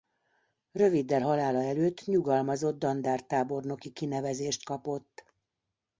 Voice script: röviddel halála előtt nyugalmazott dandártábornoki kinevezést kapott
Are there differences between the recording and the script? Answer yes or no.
no